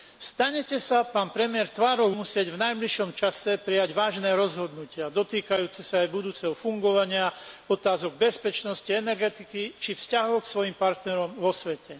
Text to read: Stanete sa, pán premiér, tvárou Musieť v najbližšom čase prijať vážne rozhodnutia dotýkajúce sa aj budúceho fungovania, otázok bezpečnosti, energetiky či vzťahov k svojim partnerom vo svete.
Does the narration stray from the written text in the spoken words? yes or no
no